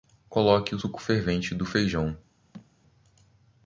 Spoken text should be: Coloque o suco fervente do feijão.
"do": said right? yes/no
yes